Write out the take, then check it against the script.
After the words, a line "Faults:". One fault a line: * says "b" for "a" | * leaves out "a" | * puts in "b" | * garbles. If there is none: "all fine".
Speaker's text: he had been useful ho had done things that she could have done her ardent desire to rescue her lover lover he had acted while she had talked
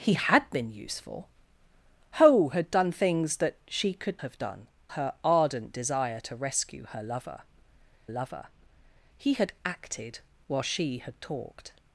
he had been useful ho had done things that she could have done her ardent desire to rescue her lover lover he had acted while she had talked
Faults:
all fine